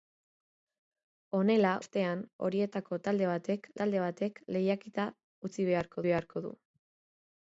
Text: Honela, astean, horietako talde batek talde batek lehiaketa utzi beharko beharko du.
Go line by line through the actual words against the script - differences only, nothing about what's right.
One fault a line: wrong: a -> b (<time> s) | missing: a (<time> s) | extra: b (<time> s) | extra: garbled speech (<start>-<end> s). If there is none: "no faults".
no faults